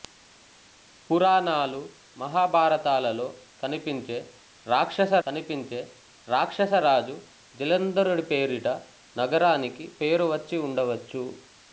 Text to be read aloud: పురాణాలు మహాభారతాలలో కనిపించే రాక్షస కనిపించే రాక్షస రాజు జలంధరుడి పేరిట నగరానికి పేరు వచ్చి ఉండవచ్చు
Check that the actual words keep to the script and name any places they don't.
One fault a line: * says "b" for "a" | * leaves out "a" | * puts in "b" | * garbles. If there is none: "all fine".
all fine